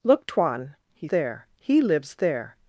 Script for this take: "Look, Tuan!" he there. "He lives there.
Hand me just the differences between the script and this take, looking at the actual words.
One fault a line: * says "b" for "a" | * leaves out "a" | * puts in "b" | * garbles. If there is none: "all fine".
all fine